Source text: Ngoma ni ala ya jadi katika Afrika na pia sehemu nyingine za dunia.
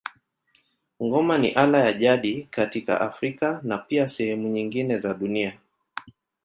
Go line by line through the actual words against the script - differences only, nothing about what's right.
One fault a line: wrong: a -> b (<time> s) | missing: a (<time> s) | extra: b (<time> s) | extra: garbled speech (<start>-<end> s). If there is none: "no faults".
no faults